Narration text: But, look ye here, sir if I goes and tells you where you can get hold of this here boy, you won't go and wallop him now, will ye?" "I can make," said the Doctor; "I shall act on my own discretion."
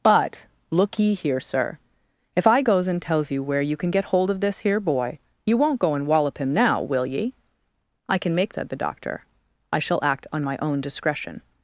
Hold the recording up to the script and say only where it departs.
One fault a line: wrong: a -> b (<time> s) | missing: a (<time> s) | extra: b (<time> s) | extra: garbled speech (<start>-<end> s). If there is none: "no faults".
no faults